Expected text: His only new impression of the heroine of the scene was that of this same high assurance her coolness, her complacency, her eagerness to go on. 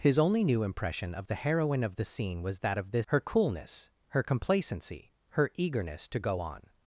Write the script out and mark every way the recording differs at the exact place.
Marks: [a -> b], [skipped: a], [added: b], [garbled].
His only new impression of the heroine of the scene was that of this [skipped: same high assurance] her coolness, her complacency, her eagerness to go on.